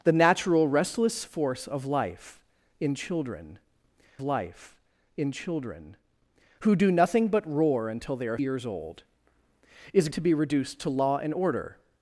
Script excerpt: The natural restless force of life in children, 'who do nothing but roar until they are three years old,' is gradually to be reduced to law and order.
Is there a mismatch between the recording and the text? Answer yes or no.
yes